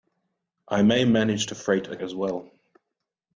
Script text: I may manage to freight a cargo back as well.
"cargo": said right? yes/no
no